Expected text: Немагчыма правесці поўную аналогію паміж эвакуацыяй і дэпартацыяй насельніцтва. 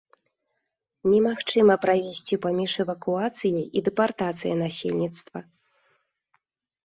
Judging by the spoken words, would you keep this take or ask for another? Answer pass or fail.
fail